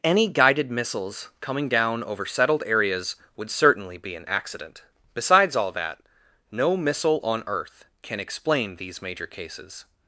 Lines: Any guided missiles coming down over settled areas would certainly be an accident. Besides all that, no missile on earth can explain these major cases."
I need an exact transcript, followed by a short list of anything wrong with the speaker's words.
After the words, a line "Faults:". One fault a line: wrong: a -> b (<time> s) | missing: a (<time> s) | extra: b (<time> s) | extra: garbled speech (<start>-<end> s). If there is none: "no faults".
Any guided missiles coming down over settled areas would certainly be an accident. Besides all that, no missile on earth can explain these major cases."
Faults:
no faults